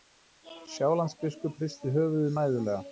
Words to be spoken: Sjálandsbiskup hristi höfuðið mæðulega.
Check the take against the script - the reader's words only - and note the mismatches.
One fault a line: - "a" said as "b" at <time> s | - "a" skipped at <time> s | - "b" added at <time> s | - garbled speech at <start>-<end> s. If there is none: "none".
none